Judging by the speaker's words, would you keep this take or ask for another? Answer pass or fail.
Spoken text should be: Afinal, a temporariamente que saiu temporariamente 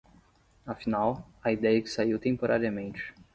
fail